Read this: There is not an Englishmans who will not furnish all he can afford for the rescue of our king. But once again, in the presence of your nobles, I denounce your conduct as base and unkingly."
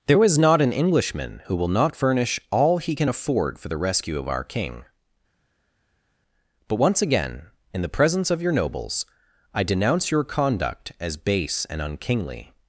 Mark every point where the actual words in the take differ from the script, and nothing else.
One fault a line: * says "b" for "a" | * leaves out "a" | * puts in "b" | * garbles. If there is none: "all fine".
* says "Englishman" for "Englishmans"